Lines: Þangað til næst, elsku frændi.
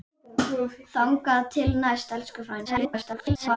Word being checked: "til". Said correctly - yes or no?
yes